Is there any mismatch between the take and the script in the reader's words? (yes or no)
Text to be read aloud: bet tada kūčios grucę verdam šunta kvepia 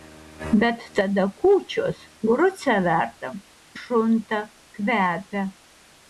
no